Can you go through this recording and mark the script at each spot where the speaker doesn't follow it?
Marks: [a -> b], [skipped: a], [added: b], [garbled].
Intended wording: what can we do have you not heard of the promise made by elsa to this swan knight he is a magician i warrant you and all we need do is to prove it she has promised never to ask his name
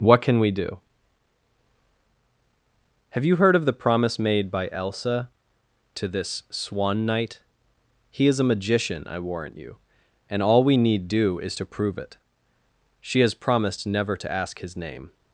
what can we do have you [skipped: not] heard of the promise made by elsa to this swan knight he is a magician i warrant you and all we need do is to prove it she has promised never to ask his name